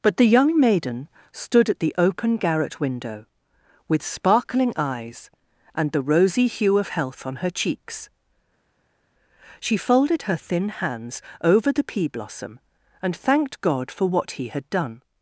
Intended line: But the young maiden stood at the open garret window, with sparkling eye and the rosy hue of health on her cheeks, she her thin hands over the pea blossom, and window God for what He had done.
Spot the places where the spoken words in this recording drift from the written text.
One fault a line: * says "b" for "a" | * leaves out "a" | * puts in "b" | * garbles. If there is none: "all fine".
* says "eyes" for "eye"
* puts in "folded"
* says "thanked" for "window"